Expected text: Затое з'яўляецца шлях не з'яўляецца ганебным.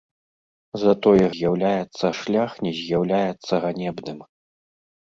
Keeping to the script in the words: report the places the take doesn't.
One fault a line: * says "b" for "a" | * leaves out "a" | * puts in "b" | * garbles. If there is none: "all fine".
all fine